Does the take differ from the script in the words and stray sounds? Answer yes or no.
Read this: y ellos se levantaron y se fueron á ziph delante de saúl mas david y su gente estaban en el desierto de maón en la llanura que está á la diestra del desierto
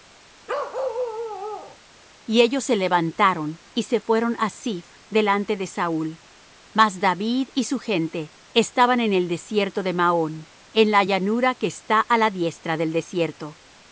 yes